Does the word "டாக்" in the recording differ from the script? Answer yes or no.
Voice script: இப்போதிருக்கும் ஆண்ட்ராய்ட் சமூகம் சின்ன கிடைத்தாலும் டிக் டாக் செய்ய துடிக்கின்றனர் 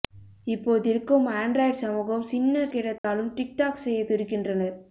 no